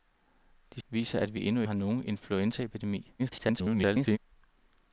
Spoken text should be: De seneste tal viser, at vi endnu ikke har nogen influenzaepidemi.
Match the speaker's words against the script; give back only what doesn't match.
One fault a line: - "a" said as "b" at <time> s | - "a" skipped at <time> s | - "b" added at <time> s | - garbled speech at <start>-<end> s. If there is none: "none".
- "seneste tal" skipped at 0.8 s
- "ikke" skipped at 1.6 s
- garbled speech at 3.2-4.2 s